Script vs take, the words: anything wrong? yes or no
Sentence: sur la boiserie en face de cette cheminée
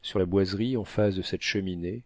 no